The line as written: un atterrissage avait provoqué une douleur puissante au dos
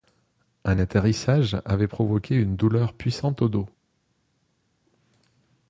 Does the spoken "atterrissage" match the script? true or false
true